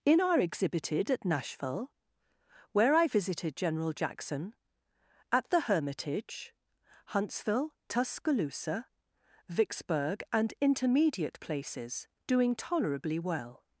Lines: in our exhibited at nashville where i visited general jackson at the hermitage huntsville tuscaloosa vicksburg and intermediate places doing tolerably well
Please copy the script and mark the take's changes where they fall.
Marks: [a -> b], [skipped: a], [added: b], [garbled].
in our exhibited at nashville where i visited general jackson at the hermitage huntsville tuscaloosa vicksburg and intermediate places doing tolerably well